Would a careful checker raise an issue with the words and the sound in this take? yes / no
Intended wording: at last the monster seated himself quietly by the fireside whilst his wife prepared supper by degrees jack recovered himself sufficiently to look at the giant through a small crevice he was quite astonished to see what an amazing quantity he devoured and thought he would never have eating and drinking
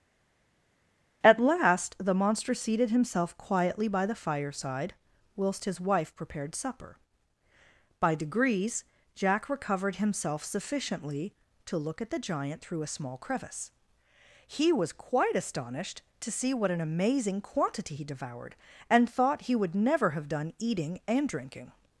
yes